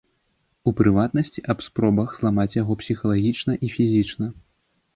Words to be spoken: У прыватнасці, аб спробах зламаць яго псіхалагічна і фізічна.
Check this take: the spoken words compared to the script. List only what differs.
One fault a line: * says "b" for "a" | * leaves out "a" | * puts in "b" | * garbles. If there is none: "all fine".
all fine